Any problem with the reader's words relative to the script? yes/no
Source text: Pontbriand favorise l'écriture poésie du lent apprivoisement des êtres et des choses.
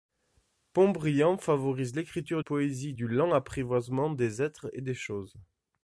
no